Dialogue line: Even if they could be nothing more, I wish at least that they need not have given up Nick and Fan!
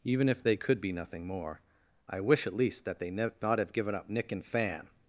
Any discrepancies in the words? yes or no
yes